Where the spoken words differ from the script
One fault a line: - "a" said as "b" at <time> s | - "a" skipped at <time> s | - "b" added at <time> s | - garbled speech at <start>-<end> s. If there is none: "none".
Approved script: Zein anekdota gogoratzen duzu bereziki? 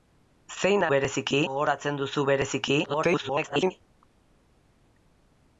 - "anekdota" said as "bereziki" at 0.9 s
- garbled speech at 2.8-3.7 s